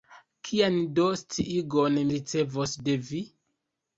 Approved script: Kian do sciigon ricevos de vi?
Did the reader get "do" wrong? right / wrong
right